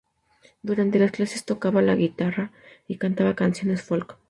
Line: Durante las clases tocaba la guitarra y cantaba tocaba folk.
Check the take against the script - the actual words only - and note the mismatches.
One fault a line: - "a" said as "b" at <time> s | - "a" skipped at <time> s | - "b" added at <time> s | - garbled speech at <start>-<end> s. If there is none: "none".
- "tocaba" said as "canciones" at 3.4 s